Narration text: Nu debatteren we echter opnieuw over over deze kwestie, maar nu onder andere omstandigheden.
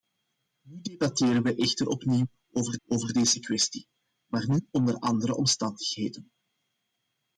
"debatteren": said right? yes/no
yes